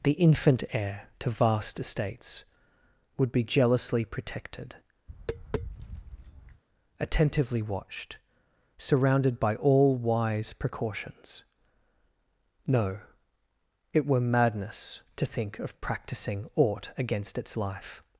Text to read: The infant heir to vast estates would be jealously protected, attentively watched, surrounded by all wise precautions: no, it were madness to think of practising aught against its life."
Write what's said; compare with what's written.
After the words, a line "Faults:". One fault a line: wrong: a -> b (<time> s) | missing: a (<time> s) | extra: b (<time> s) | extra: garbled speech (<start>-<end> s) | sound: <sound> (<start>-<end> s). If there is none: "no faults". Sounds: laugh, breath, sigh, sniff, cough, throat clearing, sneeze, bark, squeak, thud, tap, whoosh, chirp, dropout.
The infant heir to vast estates would be jealously protected, attentively watched, surrounded by all wise precautions: no, it were madness to think of practising aught against its life."
Faults:
sound: tap (5.1-6.6 s)